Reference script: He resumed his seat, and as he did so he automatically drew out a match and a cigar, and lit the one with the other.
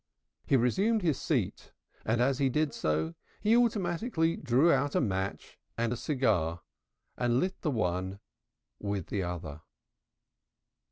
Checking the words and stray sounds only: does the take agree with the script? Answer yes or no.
yes